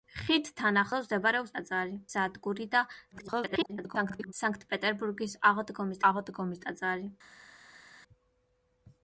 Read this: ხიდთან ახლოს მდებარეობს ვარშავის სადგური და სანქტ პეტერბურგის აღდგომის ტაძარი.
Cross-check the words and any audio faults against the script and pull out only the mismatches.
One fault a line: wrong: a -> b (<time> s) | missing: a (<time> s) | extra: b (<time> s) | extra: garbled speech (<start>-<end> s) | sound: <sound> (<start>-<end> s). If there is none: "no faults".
wrong: ვარშავის -> ტაძარი (1.6 s)
extra: garbled speech (3.1-4.3 s)
extra: აღდგომის (6.1 s)